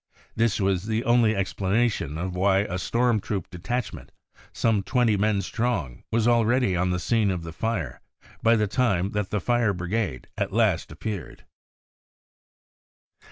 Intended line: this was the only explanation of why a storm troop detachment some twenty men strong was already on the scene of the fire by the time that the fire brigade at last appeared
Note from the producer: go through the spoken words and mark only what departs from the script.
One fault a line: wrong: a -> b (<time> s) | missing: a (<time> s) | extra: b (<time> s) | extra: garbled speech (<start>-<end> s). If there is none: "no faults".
no faults